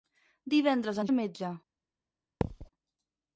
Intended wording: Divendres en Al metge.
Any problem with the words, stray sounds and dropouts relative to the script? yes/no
yes